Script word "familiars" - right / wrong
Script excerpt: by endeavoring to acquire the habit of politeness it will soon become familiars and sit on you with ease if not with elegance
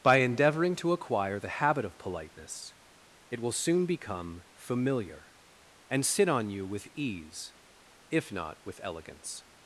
wrong